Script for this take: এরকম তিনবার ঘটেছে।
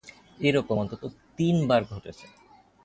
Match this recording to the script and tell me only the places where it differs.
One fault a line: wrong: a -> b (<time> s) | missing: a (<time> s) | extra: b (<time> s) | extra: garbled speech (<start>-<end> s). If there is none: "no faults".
extra: অন্তত (0.8 s)